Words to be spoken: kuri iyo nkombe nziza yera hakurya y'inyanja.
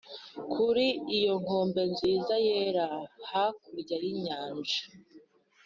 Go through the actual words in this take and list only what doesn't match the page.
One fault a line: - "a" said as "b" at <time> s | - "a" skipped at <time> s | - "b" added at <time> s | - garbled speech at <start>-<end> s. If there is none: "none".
none